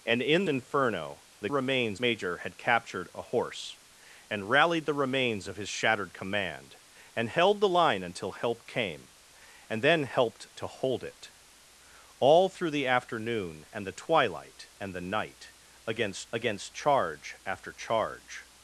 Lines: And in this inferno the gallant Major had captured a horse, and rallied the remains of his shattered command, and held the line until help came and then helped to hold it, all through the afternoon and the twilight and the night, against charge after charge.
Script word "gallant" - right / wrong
wrong